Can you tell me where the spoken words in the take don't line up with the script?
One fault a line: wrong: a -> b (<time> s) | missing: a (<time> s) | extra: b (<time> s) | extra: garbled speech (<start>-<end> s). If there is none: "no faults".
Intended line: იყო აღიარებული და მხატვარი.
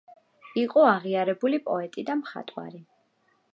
extra: პოეტი (1.7 s)